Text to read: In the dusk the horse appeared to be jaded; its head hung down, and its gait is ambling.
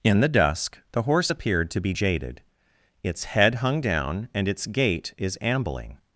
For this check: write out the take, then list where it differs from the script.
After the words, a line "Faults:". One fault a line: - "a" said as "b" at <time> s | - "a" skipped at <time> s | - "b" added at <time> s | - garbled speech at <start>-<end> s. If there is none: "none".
In the dusk the horse appeared to be jaded; its head hung down, and its gait is ambling.
Faults:
none